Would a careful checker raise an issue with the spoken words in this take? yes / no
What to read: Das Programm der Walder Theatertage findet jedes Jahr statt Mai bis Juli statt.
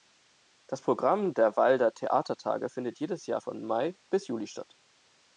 yes